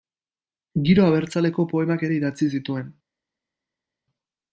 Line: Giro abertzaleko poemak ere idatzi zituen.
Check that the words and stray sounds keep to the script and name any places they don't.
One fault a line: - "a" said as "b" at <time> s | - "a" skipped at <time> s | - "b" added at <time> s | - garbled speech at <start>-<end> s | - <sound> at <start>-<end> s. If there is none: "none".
none